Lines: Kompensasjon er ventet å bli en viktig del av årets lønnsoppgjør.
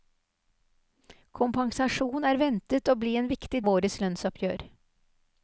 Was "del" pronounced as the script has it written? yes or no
no